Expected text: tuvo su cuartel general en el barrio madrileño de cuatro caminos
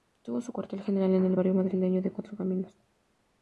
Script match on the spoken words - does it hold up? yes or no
yes